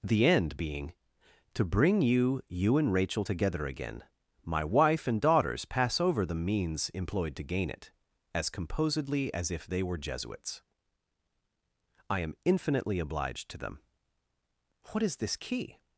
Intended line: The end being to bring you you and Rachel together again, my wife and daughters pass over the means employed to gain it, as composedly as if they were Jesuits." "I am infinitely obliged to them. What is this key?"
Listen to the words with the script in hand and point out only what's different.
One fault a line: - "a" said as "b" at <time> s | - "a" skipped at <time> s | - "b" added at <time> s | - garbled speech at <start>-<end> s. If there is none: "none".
none